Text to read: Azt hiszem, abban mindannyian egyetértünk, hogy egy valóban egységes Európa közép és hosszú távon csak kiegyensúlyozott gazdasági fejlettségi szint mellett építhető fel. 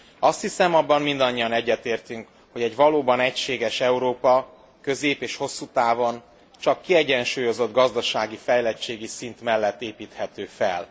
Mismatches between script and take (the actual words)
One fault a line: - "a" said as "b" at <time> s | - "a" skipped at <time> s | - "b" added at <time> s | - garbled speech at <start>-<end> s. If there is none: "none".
none